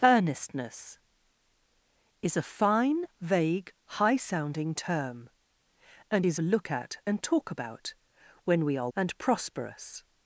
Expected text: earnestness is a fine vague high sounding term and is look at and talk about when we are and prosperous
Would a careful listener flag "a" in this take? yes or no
no